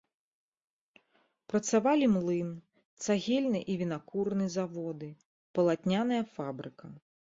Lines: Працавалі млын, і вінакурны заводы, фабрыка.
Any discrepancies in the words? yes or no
yes